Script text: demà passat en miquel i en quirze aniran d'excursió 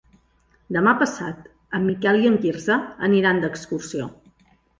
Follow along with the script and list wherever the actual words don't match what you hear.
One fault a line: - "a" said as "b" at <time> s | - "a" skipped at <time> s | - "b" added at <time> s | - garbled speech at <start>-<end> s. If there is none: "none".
none